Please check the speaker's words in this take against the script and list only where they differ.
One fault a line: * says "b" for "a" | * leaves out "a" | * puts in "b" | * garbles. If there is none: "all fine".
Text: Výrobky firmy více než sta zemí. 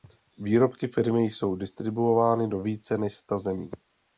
* puts in "jsou distribuovány do"